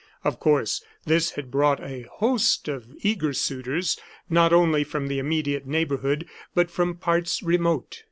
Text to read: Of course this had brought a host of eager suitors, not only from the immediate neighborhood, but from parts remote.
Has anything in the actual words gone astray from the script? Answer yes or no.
no